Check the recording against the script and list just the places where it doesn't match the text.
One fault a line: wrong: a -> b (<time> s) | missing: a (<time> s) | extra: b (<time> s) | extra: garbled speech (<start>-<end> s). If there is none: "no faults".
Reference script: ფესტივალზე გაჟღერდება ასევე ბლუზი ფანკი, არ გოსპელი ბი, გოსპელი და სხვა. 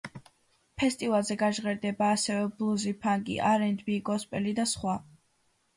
wrong: გოსპელი -> ენდ (3.7 s)